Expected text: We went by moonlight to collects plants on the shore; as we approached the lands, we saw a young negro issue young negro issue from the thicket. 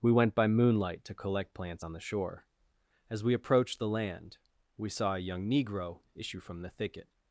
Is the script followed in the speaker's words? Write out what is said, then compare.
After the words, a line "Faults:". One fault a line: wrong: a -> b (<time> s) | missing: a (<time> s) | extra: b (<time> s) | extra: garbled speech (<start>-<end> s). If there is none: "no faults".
We went by moonlight to collect plants on the shore; as we approached the land, we saw a young negro issue from the thicket.
Faults:
wrong: collects -> collect (1.1 s)
wrong: lands -> land (3.9 s)
missing: young negro issue (6.4 s)